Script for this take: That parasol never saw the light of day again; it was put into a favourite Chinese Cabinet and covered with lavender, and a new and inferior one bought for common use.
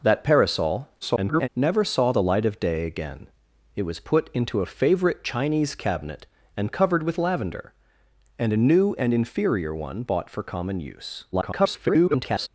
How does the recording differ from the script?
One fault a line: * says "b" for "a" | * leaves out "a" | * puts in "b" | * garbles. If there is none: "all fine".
* garbles
* garbles